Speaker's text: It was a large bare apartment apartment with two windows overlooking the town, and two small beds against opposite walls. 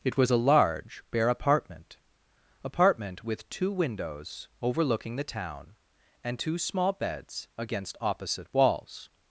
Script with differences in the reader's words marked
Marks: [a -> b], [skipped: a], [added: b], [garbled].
It was a large bare apartment apartment with two windows overlooking the town, and two small beds against opposite walls.